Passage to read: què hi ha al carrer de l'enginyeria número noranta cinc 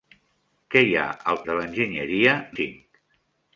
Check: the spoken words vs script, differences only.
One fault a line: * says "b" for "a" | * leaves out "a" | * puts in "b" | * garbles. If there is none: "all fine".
* leaves out "carrer"
* leaves out "número noranta"